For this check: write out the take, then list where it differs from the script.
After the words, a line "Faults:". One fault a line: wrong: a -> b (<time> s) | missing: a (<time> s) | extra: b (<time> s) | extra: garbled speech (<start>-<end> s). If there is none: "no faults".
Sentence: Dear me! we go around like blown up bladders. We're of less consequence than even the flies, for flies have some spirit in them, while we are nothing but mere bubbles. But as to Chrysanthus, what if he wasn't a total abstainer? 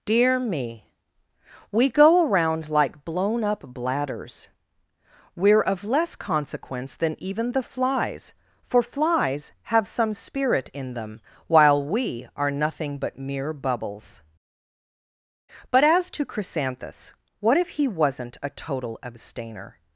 Dear me! we go around like blown up bladders. We're of less consequence than even the flies, for flies have some spirit in them, while we are nothing but mere bubbles. But as to Chrysanthus, what if he wasn't a total abstainer?
Faults:
no faults